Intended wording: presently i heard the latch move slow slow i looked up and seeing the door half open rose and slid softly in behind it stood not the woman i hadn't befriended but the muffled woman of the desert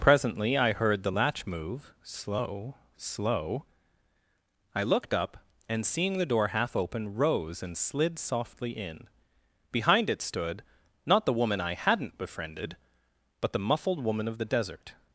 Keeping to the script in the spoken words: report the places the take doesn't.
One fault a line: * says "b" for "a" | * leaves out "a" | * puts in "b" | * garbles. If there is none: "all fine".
all fine